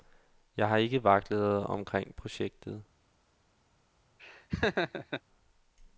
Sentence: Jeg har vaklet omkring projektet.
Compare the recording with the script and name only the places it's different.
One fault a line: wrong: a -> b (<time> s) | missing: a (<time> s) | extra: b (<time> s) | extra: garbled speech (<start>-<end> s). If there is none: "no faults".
extra: ikke (0.8 s)